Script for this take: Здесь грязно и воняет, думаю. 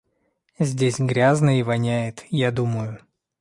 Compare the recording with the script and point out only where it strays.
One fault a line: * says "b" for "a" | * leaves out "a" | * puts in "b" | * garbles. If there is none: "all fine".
* puts in "я"